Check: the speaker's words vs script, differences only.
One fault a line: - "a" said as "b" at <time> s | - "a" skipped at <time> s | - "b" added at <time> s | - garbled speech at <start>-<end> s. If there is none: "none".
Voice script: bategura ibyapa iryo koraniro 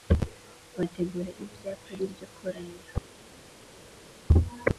none